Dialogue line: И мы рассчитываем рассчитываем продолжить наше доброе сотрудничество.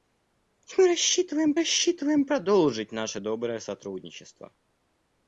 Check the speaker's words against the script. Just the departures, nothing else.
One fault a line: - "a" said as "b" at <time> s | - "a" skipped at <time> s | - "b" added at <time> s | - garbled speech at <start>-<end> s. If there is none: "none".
none